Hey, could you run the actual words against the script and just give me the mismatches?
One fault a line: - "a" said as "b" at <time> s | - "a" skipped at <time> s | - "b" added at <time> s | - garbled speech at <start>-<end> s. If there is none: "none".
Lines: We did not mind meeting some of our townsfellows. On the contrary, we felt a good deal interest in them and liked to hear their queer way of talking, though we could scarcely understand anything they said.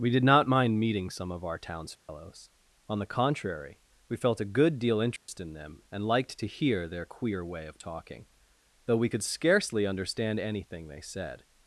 none